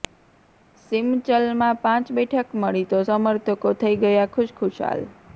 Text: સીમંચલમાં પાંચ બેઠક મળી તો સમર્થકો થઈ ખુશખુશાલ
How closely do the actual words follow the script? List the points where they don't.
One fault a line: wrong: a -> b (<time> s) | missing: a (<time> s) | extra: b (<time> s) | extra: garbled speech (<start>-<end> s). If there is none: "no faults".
extra: ગયા (4.0 s)